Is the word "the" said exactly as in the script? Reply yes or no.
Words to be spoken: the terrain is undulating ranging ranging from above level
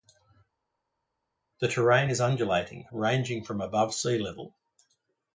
yes